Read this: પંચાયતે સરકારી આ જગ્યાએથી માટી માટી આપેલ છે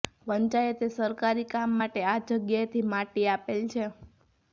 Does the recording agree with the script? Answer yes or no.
no